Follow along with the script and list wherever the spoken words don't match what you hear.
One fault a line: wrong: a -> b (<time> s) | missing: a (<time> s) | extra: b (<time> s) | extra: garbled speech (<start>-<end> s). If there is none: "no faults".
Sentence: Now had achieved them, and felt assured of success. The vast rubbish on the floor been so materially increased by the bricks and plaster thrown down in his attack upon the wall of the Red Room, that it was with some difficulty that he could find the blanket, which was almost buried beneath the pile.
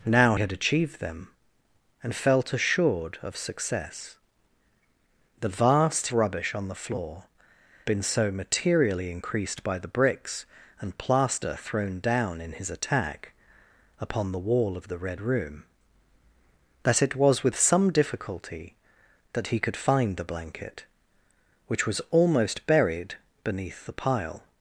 no faults